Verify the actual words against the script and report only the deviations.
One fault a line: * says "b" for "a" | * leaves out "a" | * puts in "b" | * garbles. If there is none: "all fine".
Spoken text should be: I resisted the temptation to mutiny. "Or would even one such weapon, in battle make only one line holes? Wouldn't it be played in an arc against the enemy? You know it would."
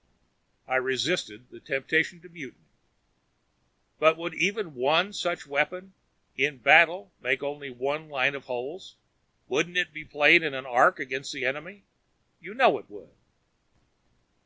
* says "But" for "Or"
* puts in "of"